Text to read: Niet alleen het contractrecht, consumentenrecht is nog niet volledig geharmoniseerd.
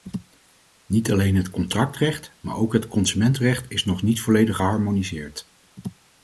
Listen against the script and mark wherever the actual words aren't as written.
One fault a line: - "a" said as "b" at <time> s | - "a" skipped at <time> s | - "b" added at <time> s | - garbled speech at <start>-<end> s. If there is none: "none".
- "maar ook het" added at 2.4 s